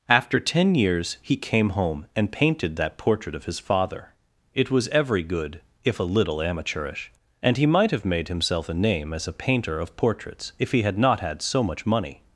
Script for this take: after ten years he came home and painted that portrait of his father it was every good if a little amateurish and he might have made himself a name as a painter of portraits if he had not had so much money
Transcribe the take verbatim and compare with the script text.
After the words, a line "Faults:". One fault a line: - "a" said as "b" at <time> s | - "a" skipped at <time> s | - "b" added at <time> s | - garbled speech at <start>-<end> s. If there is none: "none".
after ten years he came home and painted that portrait of his father it was every good if a little amateurish and he might have made himself a name as a painter of portraits if he had not had so much money
Faults:
none